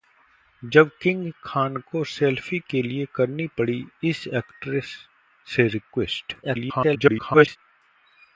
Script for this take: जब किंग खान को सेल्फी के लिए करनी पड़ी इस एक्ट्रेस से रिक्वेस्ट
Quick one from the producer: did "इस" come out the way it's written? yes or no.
yes